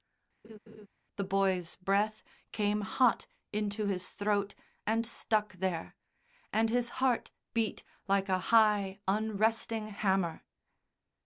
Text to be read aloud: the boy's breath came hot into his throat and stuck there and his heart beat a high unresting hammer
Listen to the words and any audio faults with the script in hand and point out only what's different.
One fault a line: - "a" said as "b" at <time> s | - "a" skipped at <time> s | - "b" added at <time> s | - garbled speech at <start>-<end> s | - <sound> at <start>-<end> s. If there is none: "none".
- laugh at 0.4-0.9 s
- "like" added at 8.1 s